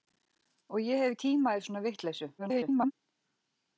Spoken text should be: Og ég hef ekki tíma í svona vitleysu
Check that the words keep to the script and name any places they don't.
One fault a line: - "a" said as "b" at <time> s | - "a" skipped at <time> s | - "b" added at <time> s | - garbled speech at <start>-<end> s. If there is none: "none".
- "ekki" skipped at 1.1 s
- garbled speech at 2.4-2.9 s